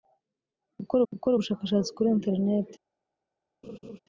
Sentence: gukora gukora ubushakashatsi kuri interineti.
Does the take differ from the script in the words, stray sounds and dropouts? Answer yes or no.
yes